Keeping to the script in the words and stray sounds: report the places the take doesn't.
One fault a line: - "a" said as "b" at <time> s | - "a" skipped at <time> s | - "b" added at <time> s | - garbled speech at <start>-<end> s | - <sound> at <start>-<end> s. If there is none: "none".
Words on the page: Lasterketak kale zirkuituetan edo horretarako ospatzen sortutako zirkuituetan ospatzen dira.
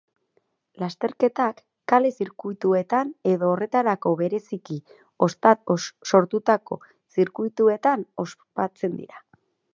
- "ospatzen" said as "bereziki" at 4.2 s